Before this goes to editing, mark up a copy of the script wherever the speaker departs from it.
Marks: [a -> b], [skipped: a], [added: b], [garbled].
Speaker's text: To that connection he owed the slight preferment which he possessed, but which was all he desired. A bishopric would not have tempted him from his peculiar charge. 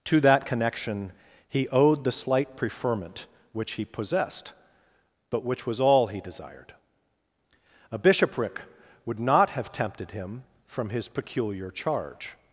To that connection he owed the slight preferment which he possessed, but which was all he desired. A bishopric would not have tempted him from his peculiar charge.